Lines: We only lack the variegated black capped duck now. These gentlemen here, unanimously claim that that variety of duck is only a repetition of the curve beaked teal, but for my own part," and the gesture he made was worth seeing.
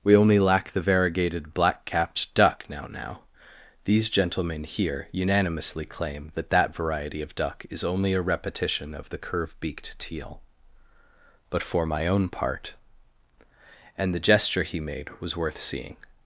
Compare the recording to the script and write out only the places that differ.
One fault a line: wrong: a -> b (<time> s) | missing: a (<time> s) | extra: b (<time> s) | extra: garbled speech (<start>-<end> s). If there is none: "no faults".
extra: now (2.9 s)